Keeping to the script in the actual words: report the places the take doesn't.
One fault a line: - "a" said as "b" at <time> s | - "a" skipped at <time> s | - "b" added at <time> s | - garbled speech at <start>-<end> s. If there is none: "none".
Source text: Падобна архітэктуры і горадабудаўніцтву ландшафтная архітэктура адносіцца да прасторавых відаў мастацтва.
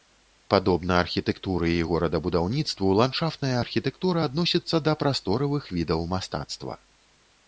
none